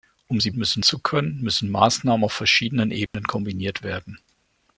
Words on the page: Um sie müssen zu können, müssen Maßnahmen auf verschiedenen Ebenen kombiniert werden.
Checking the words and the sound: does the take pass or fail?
fail